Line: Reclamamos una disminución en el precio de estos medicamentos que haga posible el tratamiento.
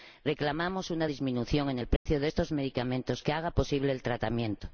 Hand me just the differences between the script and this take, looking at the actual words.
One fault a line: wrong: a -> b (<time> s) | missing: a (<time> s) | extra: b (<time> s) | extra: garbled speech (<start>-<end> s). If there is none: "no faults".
no faults